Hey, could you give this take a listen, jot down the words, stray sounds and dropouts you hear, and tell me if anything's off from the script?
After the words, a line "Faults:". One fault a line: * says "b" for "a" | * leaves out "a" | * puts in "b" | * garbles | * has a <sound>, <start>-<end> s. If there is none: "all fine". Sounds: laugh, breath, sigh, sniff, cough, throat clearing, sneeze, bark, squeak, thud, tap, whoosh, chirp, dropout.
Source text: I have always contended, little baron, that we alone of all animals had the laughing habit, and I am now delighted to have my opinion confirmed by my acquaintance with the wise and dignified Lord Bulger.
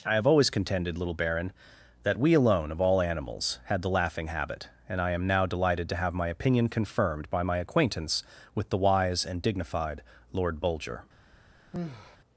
I have always contended, little baron, that we alone of all animals had the laughing habit, and I am now delighted to have my opinion confirmed by my acquaintance with the wise and dignified Lord Bulger.
Faults:
* has a sigh, 11.7-12.2 s